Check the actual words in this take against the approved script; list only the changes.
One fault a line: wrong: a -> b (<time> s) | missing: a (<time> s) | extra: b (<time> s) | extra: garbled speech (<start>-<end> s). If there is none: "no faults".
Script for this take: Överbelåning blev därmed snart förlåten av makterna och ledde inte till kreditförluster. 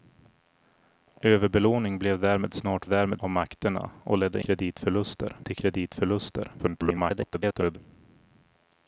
wrong: förlåten -> därmed (2.9 s)
wrong: inte -> kreditförluster (4.4 s)
extra: garbled speech (6.6-7.8 s)